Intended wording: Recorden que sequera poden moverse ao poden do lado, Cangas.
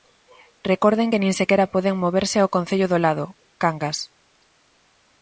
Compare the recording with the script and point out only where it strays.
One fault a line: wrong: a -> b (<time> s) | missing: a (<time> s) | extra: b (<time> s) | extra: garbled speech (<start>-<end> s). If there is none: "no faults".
extra: nin (1.2 s)
wrong: poden -> concello (2.5 s)